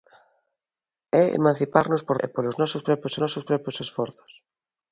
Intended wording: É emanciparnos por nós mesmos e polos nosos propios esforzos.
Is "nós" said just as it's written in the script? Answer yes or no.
no